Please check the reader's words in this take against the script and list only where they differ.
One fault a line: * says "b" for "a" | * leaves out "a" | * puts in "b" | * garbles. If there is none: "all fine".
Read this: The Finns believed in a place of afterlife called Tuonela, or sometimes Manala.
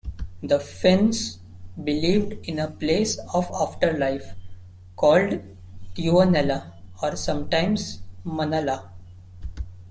all fine